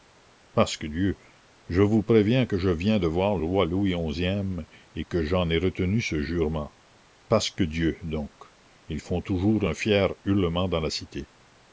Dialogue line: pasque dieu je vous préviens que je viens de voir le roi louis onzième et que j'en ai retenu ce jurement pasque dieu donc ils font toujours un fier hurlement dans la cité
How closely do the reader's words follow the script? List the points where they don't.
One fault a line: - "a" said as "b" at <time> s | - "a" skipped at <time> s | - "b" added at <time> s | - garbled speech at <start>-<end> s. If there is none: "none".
- "le" skipped at 3.4 s